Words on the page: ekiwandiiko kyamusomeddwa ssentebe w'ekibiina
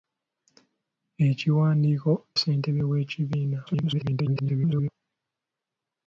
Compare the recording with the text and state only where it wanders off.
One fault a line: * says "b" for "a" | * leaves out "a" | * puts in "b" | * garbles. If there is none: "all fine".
* leaves out "kyamusomeddwa"
* garbles